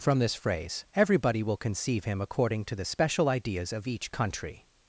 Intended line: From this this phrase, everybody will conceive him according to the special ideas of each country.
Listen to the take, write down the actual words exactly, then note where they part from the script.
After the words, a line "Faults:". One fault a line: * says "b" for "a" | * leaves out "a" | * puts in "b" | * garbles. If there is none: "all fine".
From this phrase, everybody will conceive him according to the special ideas of each country.
Faults:
* leaves out "this"